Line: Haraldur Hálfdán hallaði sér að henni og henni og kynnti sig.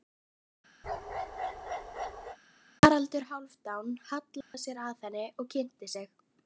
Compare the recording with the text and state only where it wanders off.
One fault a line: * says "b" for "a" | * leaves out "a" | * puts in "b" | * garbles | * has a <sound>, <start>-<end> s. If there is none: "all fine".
* has a bark, 0.8-2.4 s
* has a dropout, 4.4-4.5 s
* leaves out "henni og"